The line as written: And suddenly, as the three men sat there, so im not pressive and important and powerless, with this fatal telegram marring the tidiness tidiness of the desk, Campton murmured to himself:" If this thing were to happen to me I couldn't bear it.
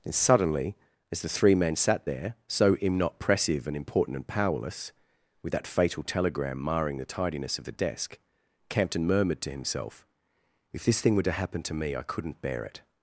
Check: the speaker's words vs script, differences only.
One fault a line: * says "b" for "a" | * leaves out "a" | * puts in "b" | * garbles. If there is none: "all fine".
* says "that" for "this"
* leaves out "tidiness"